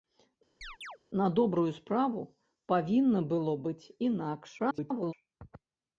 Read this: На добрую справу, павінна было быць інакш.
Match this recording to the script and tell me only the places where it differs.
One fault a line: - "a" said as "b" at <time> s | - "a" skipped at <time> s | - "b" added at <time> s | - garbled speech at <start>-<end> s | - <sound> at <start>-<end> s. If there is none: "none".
- chirp at 0.6-1.0 s
- garbled speech at 4.6-5.1 s